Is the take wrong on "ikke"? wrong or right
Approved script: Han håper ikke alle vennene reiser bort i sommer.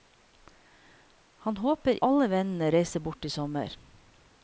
wrong